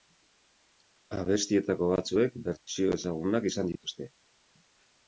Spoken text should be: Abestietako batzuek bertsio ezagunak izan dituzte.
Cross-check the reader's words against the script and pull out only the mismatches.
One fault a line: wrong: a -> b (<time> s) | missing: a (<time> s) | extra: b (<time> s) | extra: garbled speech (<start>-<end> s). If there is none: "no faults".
no faults